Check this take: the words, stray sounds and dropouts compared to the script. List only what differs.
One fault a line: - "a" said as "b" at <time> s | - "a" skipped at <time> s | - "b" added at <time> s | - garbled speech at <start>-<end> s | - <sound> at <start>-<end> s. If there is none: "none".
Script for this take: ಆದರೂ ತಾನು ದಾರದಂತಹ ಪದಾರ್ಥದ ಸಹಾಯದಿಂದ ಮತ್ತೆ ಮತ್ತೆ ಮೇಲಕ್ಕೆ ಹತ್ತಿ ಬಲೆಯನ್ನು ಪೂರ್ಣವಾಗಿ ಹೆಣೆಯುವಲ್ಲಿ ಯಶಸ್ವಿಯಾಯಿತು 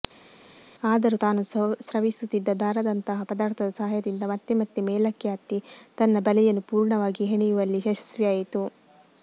- "ಸ್ರವಿಸುತ್ತಿದ್ದ" added at 1.8 s
- "ತನ್ನ" added at 6.0 s